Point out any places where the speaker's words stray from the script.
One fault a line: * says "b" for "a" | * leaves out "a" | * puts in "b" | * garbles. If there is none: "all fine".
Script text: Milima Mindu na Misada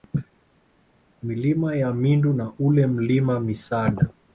* puts in "ya"
* puts in "ule Mlima"